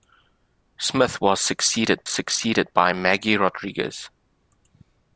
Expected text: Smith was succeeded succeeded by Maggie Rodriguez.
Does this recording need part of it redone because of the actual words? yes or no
no